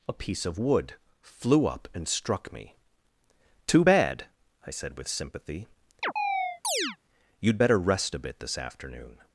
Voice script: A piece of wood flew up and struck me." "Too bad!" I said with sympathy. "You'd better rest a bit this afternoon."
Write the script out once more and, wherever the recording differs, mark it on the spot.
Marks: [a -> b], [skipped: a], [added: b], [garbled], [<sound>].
A piece of wood flew up and struck me." "Too bad!" I said with sympathy. [chirp] "You'd better rest a bit this afternoon."